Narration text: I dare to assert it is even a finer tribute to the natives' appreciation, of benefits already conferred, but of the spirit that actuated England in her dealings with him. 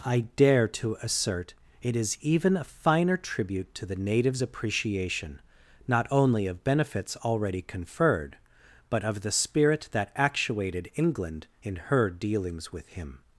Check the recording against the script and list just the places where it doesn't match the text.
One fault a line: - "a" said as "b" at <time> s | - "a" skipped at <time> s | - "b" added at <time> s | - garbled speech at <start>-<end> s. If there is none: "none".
- "not only" added at 5.9 s